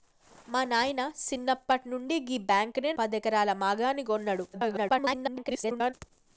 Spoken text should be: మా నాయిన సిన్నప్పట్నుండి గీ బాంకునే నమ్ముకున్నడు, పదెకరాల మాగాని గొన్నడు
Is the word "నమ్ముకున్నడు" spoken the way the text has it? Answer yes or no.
no